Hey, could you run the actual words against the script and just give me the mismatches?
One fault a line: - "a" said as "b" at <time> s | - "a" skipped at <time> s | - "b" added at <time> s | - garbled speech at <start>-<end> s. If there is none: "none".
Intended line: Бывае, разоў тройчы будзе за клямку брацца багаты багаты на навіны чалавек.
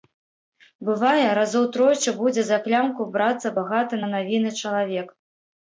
- "багаты" skipped at 4.0 s